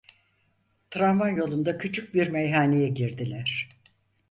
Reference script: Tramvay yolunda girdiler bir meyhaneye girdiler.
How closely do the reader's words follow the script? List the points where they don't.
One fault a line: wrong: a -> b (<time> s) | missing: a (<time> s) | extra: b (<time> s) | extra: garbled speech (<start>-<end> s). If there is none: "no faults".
wrong: girdiler -> küçük (1.8 s)